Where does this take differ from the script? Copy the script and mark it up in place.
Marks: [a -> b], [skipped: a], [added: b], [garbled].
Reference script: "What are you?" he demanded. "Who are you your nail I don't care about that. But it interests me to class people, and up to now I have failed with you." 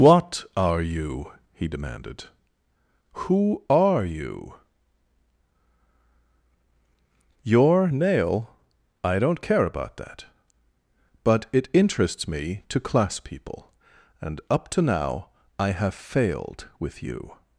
"What are you?" he demanded. "Who are you your nail I don't care about that. But it interests me to class people, and up to now I have failed with you."